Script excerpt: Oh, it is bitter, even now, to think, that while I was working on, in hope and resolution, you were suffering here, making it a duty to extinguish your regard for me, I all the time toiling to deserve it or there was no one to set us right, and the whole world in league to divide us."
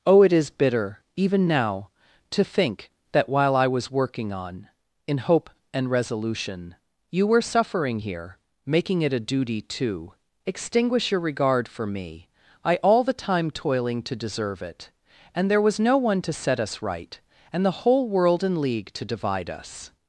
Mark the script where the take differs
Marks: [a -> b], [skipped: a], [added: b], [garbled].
Oh, it is bitter, even now, to think, that while I was working on, in hope and resolution, you were suffering here, making it a duty to extinguish your regard for me, I all the time toiling to deserve it [or -> and] there was no one to set us right, and the whole world in league to divide us."